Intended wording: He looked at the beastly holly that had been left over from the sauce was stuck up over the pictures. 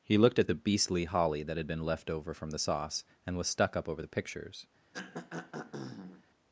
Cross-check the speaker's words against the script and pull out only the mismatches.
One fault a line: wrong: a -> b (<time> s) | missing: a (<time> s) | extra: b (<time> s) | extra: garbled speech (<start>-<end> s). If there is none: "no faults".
extra: and (3.2 s)